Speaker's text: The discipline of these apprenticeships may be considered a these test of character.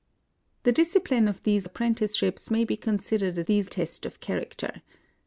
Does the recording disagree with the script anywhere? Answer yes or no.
no